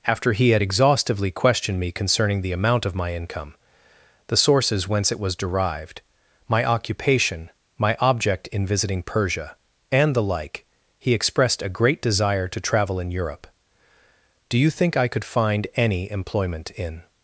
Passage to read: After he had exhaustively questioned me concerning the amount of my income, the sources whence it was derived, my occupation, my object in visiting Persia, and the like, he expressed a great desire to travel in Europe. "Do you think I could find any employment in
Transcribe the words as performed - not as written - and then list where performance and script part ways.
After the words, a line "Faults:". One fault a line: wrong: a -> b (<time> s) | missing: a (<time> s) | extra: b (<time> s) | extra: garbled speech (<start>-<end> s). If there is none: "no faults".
After he had exhaustively questioned me concerning the amount of my income, the sources whence it was derived, my occupation, my object in visiting Persia, and the like, he expressed a great desire to travel in Europe. "Do you think I could find any employment in
Faults:
no faults